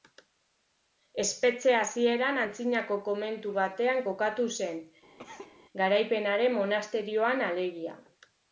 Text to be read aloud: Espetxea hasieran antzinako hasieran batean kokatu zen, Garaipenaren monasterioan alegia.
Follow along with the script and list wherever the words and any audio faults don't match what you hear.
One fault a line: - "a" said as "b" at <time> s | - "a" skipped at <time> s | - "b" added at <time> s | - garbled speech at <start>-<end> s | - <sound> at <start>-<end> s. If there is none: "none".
- "hasieran" said as "komentu" at 3.1 s
- cough at 5.2-5.6 s